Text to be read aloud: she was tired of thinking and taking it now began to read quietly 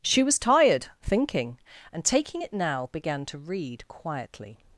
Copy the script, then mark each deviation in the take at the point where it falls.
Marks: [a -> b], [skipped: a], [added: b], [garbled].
she was tired [skipped: of] thinking and taking it now began to read quietly